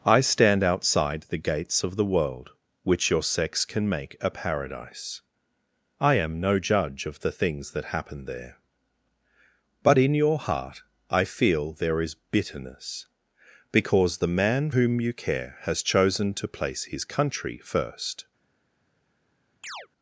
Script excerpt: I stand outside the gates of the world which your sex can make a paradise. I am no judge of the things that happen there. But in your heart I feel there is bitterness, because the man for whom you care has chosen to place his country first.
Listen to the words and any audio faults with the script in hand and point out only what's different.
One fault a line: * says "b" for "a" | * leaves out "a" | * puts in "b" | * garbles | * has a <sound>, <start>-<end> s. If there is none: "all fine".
* leaves out "for"
* has a chirp, 19.6-19.9 s